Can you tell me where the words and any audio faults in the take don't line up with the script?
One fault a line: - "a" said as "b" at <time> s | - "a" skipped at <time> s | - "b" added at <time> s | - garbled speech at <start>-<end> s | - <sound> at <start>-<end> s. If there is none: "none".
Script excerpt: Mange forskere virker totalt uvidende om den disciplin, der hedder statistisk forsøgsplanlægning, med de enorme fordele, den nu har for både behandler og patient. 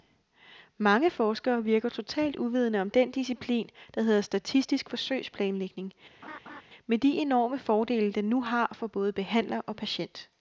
- laugh at 6.2-6.6 s